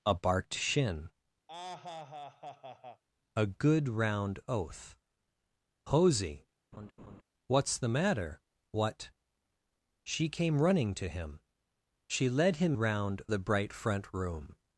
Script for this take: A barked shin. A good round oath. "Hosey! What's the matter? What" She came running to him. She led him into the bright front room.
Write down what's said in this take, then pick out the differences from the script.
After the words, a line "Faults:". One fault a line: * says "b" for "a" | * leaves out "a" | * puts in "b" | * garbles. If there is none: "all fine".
A barked shin. A good round oath. "Hosey! What's the matter? What" She came running to him. She led him round the bright front room.
Faults:
* says "round" for "into"